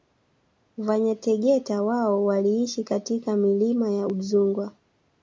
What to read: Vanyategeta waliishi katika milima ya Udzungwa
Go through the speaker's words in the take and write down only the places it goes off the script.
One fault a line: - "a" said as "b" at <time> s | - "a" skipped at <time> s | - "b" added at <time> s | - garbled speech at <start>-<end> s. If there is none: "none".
- "wao" added at 1.8 s